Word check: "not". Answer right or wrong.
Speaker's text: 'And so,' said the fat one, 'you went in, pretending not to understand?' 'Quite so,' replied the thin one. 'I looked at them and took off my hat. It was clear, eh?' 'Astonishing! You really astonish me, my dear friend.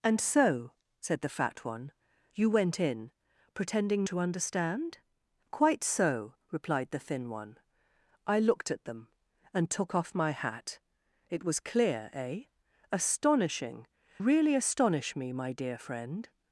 wrong